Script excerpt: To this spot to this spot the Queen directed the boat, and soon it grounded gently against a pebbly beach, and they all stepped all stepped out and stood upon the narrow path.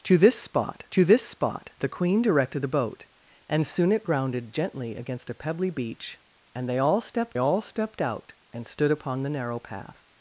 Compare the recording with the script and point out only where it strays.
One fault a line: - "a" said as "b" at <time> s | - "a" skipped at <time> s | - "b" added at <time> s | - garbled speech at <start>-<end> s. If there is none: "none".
none